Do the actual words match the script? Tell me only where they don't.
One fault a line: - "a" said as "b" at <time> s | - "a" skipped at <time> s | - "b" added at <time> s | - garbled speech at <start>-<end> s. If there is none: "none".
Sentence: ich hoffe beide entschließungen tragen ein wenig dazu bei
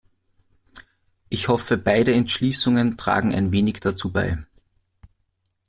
none